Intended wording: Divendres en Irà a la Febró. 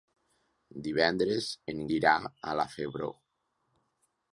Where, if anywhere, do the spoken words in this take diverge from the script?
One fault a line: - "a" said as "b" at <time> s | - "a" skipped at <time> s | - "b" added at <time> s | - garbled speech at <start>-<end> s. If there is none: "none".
none